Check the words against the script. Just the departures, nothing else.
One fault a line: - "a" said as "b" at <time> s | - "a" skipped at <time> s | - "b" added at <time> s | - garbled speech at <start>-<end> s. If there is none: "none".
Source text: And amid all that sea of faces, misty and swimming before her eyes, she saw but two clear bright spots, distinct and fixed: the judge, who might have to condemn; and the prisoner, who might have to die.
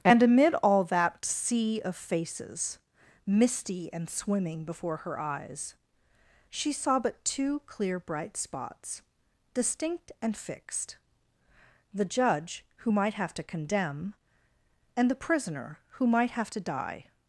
none